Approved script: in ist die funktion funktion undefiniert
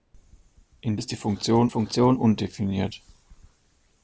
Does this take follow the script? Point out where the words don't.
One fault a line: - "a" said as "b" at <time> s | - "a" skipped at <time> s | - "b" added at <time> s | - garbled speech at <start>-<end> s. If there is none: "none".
none